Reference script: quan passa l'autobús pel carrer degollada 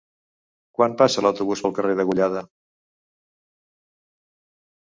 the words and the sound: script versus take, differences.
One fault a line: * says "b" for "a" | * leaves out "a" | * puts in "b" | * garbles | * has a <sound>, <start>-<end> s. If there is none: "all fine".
all fine